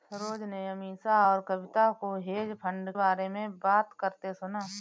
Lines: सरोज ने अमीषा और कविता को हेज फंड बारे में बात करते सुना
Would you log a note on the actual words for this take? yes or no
no